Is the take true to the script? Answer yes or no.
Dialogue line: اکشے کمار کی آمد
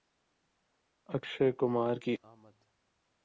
yes